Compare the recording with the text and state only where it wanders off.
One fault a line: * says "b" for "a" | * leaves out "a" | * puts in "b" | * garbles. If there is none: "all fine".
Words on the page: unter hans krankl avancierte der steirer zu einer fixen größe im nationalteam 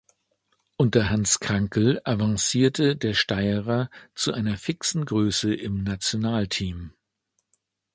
all fine